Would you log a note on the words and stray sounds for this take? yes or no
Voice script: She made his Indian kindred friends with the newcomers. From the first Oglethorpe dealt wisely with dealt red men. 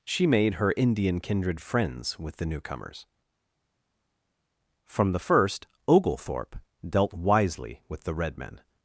yes